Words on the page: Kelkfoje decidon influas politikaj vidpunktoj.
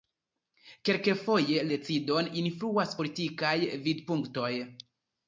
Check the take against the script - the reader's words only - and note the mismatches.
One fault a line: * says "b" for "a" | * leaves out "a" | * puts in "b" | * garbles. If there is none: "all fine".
all fine